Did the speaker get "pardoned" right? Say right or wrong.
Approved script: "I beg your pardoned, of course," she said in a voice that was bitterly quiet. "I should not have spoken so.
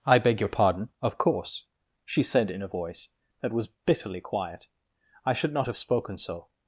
wrong